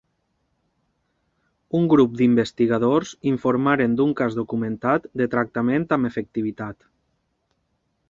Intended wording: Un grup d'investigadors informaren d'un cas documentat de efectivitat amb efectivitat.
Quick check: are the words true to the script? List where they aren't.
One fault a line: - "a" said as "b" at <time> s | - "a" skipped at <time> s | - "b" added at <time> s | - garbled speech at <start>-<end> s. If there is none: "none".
- "efectivitat" said as "tractament" at 5.4 s